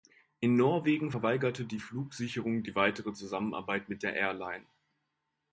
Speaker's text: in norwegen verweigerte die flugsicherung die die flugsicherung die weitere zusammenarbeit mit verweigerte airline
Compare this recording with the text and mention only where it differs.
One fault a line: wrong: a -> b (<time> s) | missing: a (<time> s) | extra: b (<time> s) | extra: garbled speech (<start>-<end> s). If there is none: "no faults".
missing: die flugsicherung die (2.7 s)
wrong: verweigerte -> der (4.0 s)